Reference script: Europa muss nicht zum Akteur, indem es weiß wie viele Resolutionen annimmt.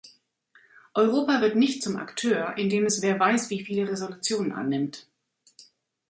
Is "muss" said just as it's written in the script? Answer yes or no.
no